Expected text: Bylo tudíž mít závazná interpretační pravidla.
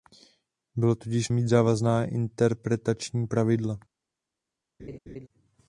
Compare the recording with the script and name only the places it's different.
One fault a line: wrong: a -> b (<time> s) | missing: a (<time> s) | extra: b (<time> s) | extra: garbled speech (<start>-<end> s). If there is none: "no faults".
no faults